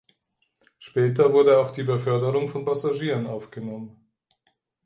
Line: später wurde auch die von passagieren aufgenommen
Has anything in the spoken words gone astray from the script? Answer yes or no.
yes